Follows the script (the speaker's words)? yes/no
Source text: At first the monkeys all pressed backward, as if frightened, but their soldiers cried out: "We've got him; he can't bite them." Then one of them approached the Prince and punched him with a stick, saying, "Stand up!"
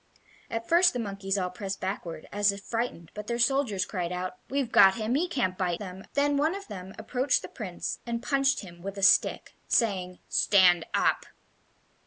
yes